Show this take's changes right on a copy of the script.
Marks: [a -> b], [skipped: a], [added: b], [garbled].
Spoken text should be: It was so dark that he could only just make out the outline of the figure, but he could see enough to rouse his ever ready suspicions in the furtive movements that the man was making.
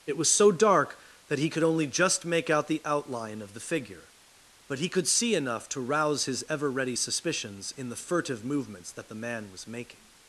It was so dark that he could only just make out the outline of the figure, but he could see enough to rouse his ever ready suspicions in the furtive movements that the man was making.